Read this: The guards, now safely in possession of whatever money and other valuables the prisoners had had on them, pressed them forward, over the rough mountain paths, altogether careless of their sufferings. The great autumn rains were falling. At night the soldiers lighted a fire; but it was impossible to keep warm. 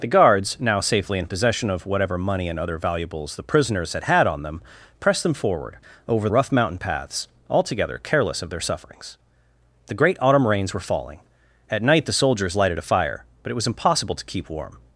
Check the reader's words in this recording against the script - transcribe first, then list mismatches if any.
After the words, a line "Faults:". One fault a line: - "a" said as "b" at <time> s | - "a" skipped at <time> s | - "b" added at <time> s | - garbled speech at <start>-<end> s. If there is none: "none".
The guards, now safely in possession of whatever money and other valuables the prisoners had had on them, pressed them forward, over rough mountain paths, altogether careless of their sufferings. The great autumn rains were falling. At night the soldiers lighted a fire; but it was impossible to keep warm.
Faults:
- "the" skipped at 6.3 s